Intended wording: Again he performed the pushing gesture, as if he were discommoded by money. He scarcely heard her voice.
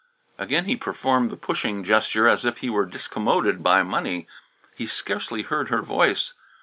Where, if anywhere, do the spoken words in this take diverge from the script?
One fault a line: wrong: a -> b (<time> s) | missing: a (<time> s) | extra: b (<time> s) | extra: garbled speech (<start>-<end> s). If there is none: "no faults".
no faults